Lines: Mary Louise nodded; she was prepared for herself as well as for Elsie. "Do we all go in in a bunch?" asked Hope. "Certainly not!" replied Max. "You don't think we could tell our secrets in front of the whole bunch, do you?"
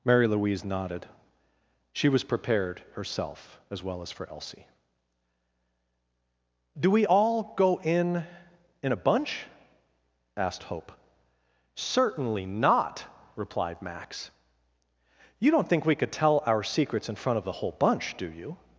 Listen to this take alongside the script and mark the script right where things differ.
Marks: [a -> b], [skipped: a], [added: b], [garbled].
Mary Louise nodded; she was prepared [skipped: for] herself as well as for Elsie. "Do we all go in in a bunch?" asked Hope. "Certainly not!" replied Max. "You don't think we could tell our secrets in front of the whole bunch, do you?"